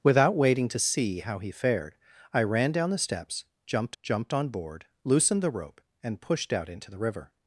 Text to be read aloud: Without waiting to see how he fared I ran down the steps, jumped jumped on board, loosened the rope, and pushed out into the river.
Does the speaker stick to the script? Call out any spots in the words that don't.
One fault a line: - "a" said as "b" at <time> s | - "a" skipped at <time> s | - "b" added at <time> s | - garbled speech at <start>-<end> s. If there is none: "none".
none